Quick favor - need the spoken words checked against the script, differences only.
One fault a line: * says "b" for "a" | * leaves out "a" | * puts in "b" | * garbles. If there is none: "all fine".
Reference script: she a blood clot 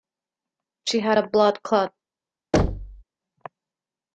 * puts in "had"